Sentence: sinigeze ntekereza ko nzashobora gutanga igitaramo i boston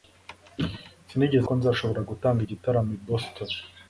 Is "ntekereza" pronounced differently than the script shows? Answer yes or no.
yes